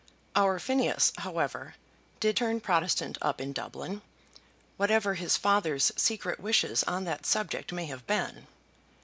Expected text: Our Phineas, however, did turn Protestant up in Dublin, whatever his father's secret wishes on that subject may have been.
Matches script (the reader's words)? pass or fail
pass